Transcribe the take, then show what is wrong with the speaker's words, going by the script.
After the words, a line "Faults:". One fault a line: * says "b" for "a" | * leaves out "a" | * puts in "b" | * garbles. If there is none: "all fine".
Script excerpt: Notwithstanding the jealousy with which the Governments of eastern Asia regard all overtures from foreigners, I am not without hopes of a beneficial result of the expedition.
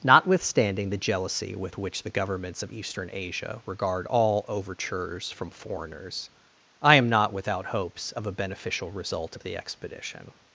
Notwithstanding the jealousy with which the Governments of eastern Asia regard all overtures from foreigners, I am not without hopes of a beneficial result of the expedition.
Faults:
all fine